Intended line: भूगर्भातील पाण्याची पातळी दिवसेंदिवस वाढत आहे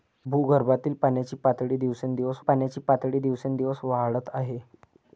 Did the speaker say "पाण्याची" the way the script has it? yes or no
yes